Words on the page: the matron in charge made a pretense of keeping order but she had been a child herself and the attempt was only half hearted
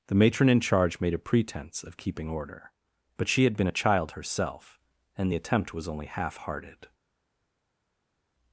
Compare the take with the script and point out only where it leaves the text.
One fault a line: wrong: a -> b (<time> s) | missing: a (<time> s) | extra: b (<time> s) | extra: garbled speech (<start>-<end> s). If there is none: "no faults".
no faults